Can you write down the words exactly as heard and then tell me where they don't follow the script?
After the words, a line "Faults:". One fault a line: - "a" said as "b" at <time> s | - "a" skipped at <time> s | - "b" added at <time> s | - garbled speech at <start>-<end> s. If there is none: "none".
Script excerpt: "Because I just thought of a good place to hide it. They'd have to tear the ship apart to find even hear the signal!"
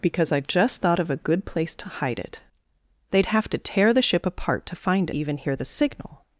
"Because I just thought of a good place to hide it. They'd have to tear the ship apart to find even hear the signal!"
Faults:
none